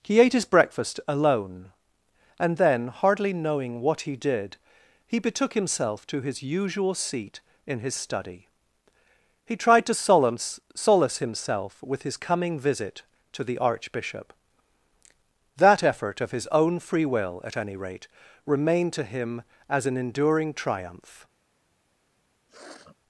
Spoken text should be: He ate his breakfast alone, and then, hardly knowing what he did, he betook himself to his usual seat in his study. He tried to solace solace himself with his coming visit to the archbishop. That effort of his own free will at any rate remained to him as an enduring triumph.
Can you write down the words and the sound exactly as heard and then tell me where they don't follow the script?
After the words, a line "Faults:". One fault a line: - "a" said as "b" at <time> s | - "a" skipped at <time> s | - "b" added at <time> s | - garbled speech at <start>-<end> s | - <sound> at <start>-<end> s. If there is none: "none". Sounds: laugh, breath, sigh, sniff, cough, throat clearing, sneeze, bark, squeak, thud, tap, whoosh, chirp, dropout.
He ate his breakfast alone, and then, hardly knowing what he did, he betook himself to his usual seat in his study. He tried to solace solace himself with his coming visit to the archbishop. That effort of his own free will at any rate remained to him as an enduring triumph.
Faults:
- sniff at 22.5-23.0 s